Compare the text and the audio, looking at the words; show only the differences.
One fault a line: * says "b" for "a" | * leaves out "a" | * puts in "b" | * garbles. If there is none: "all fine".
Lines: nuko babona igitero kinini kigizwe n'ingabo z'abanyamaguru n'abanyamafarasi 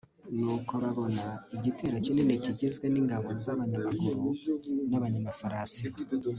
all fine